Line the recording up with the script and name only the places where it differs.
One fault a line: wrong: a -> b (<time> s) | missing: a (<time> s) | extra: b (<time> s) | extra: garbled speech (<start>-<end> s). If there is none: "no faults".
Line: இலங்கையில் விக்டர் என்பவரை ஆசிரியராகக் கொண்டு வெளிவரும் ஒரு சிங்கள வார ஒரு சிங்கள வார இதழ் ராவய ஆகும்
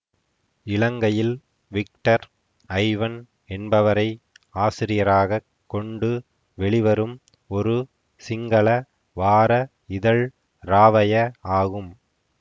extra: ஐவன் (2.7 s)
missing: ஒரு சிங்கள வார (9.5 s)